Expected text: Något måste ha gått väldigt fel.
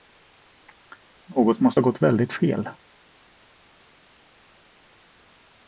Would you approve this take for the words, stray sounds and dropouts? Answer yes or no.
yes